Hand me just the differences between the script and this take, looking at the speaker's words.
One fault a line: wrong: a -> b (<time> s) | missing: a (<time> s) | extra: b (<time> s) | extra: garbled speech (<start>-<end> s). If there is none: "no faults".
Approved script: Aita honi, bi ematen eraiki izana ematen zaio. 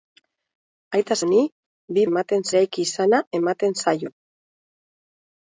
no faults